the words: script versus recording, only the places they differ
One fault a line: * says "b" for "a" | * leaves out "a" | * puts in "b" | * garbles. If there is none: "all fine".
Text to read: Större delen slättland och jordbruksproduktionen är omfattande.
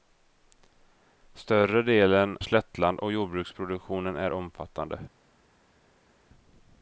all fine